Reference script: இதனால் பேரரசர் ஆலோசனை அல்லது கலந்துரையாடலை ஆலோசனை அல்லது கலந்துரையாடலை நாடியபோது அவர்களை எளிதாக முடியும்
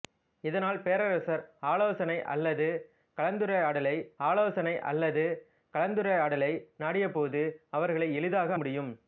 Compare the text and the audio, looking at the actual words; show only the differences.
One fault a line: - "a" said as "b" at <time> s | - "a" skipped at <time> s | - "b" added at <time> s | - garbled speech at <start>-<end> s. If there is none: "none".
none